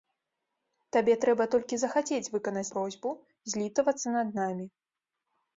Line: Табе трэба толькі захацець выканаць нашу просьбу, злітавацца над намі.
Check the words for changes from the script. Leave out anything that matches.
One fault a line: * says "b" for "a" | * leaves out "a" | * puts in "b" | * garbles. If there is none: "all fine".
* leaves out "нашу"